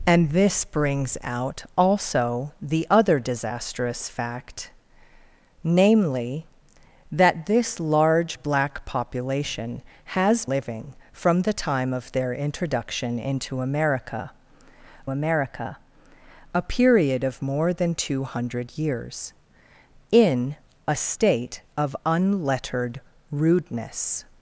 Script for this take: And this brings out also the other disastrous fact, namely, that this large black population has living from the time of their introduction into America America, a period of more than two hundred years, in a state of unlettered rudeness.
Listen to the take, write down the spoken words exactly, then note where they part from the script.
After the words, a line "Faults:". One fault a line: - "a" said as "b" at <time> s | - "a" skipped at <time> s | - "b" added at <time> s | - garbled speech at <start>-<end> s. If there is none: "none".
And this brings out also the other disastrous fact, namely, that this large black population has living from the time of their introduction into America America, a period of more than two hundred years, in a state of unlettered rudeness.
Faults:
none